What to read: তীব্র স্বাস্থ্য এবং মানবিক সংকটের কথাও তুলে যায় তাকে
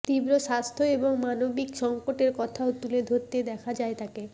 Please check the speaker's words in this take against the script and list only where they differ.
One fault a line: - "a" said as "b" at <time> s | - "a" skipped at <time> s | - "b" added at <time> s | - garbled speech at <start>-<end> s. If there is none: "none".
- "ধরতে দেখা" added at 3.0 s